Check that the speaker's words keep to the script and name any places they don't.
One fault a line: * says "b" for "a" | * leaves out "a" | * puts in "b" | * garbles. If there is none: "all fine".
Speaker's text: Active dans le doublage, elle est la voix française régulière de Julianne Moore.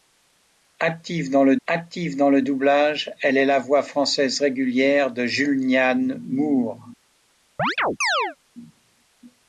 * puts in "active dans le"